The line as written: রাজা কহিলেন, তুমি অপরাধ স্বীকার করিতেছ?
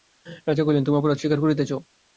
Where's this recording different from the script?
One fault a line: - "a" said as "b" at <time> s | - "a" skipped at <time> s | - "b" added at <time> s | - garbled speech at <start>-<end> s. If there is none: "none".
none